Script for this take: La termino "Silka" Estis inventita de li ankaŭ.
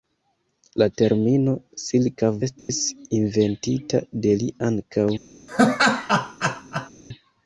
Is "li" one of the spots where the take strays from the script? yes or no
no